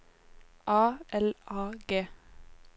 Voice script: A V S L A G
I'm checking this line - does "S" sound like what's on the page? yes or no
no